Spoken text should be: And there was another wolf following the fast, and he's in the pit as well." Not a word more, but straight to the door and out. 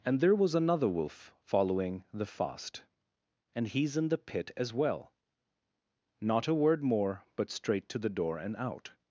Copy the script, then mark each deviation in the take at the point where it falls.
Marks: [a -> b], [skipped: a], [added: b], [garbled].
And there was another wolf following the fast, and he's in the pit as well." Not a word more, but straight to the door and out.